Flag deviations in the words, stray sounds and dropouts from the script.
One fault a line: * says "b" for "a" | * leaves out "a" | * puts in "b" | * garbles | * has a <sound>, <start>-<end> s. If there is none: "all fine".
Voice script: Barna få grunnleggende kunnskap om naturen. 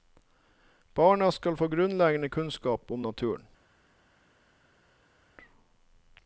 * puts in "skal"